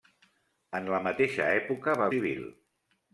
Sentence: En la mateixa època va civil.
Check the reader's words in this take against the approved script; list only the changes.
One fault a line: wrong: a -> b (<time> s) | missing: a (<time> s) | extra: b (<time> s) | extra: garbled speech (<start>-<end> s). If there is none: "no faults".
no faults